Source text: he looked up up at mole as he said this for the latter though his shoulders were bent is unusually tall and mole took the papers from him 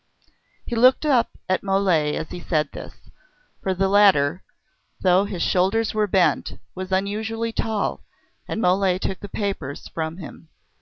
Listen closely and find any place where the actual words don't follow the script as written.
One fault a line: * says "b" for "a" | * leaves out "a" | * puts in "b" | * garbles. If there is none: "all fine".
* leaves out "up"
* says "was" for "is"